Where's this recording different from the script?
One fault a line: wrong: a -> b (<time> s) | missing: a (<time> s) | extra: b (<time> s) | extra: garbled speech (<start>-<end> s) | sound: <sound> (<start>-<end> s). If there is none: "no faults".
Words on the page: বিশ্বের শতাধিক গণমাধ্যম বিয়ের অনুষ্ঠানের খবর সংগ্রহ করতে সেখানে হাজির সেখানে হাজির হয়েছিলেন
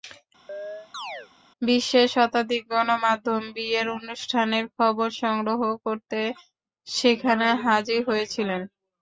sound: chirp (0.5-1.3 s)
missing: সেখানে হাজির (8.0 s)